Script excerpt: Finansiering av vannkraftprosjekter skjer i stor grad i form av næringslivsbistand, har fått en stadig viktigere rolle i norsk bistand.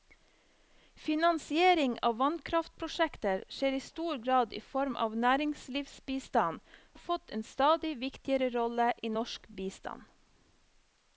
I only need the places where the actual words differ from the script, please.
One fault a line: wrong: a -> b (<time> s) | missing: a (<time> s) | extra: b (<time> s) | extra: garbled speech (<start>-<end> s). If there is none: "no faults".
no faults